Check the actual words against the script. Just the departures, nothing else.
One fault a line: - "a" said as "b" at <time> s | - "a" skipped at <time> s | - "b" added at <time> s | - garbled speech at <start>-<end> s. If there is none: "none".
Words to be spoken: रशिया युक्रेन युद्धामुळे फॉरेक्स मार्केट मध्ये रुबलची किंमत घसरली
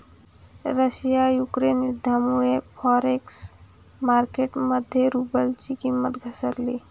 none